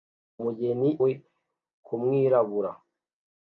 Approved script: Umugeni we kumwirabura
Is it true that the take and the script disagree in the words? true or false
false